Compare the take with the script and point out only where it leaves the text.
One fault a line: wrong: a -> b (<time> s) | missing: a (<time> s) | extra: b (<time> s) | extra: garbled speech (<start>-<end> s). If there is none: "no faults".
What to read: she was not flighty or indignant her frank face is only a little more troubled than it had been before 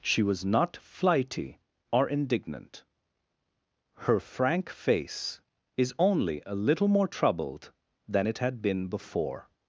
no faults